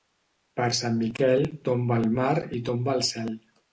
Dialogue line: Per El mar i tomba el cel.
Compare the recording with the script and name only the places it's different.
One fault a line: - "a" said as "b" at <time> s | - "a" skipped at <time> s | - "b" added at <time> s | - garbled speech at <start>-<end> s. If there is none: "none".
- "Sant Miquel tomba" added at 0.8 s